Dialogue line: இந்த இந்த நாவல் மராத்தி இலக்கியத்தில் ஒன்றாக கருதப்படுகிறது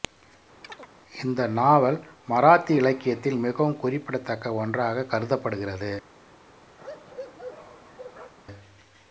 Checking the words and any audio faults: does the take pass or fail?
fail